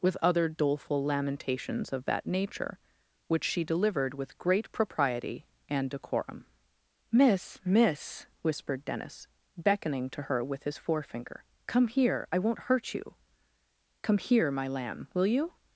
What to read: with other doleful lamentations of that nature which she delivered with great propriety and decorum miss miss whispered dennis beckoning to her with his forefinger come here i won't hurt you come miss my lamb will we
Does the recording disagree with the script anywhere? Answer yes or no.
yes